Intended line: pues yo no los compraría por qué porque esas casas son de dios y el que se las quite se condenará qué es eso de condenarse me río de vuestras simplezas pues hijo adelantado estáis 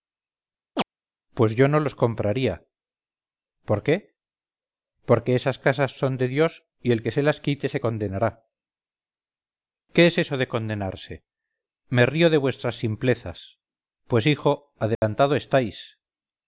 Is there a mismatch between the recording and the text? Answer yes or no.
no